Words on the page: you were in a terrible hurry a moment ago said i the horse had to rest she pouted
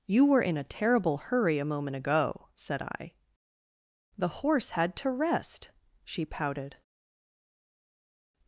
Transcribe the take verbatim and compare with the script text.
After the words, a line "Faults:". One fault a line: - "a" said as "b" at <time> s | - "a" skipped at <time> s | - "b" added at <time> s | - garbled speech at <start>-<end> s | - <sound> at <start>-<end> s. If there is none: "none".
you were in a terrible hurry a moment ago said i the horse had to rest she pouted
Faults:
none